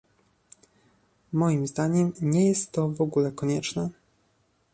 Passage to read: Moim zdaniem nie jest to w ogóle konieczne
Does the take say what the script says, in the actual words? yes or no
yes